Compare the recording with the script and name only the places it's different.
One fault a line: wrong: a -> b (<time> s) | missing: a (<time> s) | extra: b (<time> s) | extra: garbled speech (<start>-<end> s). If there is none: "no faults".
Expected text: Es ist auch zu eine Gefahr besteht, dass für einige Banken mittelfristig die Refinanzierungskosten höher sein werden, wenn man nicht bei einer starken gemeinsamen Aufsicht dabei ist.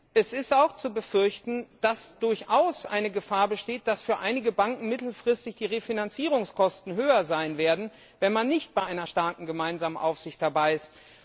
extra: befürchten dass durchaus (0.9 s)